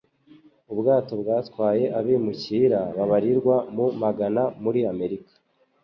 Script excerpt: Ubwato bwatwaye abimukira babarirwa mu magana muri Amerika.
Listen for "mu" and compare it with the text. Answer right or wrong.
right